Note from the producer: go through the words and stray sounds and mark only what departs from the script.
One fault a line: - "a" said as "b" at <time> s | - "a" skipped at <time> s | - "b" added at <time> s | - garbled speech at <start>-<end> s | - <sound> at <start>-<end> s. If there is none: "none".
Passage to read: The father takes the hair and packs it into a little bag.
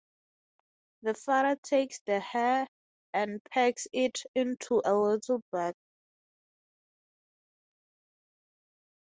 none